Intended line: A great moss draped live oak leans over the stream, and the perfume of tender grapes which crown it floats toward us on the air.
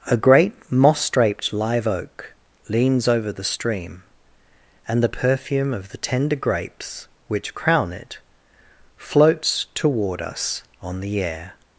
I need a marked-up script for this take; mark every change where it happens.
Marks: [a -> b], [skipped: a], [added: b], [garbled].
A great moss draped live oak leans over the stream, and the perfume of [added: the] tender grapes which crown it floats toward us on the air.